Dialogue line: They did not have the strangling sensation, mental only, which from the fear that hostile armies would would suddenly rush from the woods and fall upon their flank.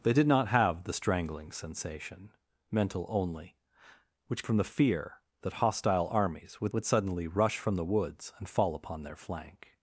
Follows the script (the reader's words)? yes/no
yes